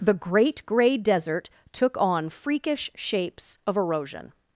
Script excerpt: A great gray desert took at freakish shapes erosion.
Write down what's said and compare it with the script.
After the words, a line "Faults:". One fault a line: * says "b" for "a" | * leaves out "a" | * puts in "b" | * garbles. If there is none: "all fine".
The great gray desert took on freakish shapes of erosion.
Faults:
* says "The" for "A"
* says "on" for "at"
* puts in "of"